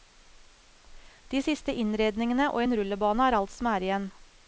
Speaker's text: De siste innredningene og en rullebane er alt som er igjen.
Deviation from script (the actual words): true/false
false